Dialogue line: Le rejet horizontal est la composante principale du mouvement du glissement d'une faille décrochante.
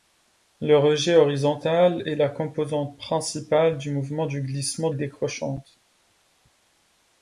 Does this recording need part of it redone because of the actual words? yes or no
yes